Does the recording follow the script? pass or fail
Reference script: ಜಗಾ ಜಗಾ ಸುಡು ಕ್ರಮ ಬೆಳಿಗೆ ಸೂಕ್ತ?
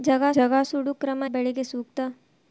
pass